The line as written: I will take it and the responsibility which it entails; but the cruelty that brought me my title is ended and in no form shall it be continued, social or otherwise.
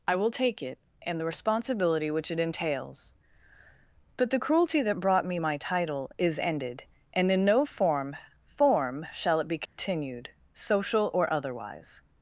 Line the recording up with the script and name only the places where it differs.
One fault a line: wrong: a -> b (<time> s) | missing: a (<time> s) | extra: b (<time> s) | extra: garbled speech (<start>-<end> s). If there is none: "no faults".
extra: form (8.5 s)